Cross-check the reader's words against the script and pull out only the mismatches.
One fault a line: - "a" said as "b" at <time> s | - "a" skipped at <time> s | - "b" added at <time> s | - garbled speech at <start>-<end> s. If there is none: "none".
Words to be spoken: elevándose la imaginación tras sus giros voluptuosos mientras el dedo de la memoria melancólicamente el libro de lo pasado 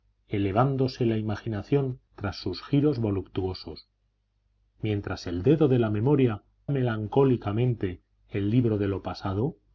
none